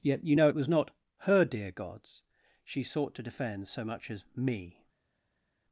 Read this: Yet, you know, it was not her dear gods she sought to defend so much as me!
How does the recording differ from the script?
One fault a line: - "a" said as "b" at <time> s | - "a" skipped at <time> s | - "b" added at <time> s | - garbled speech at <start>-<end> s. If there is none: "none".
none